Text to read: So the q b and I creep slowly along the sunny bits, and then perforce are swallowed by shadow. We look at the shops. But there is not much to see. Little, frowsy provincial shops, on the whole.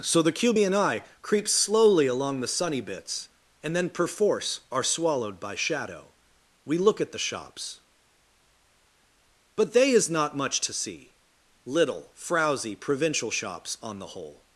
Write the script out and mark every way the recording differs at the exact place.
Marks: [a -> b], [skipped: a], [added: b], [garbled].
So the q b and I creep slowly along the sunny bits, and then perforce are swallowed by shadow. We look at the shops. But [there -> they] is not much to see. Little, frowsy provincial shops, on the whole.